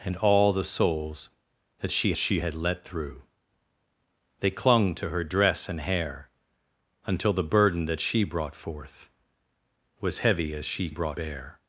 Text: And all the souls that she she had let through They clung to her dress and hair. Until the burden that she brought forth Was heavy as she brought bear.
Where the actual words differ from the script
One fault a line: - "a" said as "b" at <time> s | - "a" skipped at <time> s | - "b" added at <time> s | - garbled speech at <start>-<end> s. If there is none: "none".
none